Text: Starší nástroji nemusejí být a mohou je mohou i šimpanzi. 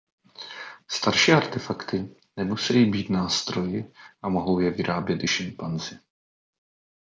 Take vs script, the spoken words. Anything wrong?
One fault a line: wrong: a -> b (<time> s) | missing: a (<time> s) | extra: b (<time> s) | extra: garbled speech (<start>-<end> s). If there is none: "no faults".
wrong: nástroji -> artefakty (1.3 s)
extra: nástroji (3.1 s)
wrong: mohou -> vyrábět (4.7 s)